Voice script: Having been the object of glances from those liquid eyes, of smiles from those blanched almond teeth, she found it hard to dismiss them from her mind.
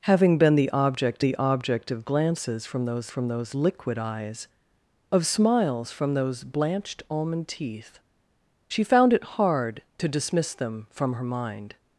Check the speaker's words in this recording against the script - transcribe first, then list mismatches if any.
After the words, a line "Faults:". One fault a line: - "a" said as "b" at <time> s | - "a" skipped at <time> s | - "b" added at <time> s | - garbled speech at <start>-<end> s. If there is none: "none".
Having been the object the object of glances from those from those liquid eyes, of smiles from those blanched almond teeth, she found it hard to dismiss them from her mind.
Faults:
- "the object" added at 1.2 s
- "from those" added at 3.1 s